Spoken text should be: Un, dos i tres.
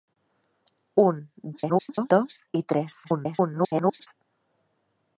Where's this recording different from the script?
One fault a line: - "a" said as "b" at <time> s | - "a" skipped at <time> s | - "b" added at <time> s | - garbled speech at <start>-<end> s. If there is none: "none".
- garbled speech at 1.5-2.1 s
- garbled speech at 3.0-4.1 s